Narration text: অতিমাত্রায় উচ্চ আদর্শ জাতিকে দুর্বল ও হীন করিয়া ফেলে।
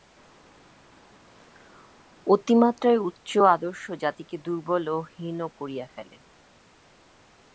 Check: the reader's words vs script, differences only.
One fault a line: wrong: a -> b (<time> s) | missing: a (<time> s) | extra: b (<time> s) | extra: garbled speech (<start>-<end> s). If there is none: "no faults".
no faults